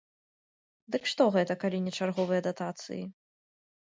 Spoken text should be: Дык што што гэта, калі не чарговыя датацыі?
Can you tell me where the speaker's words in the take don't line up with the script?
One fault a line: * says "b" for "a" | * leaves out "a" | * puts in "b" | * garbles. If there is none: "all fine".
* leaves out "што"